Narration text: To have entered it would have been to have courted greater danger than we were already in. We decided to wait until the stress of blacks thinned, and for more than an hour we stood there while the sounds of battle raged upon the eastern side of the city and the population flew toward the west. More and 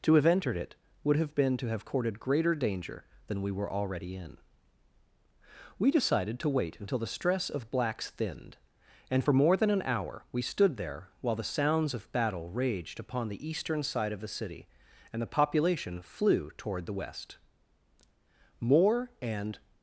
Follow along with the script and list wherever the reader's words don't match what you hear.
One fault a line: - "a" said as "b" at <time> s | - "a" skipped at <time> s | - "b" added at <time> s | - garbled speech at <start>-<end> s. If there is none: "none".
none